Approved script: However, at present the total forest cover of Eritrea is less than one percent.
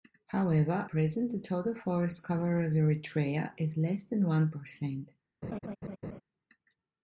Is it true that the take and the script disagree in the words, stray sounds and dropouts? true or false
true